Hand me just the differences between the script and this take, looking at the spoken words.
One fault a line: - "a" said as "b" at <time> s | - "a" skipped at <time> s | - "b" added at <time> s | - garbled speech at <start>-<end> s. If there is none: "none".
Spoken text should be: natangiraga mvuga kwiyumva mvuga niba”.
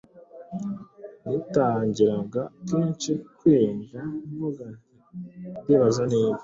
- "mvuga" said as "kenshi" at 2.7 s
- "nti Ndibaza" added at 4.7 s